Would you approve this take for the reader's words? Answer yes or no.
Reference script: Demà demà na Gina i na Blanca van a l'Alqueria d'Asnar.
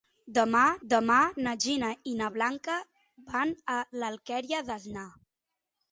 yes